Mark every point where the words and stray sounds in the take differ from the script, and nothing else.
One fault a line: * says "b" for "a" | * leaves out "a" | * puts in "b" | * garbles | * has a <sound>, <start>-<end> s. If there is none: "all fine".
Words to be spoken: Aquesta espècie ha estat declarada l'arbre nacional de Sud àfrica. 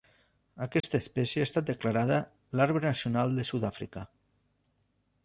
* has a dropout, 0.8-0.8 s